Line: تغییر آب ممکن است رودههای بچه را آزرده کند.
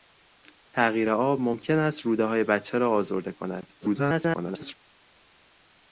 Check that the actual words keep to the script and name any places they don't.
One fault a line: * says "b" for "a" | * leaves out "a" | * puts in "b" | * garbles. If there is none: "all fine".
* garbles